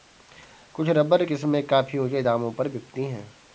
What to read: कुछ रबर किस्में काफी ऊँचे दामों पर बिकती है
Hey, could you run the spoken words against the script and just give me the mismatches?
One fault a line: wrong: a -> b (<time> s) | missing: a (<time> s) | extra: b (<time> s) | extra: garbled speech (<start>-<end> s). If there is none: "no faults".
no faults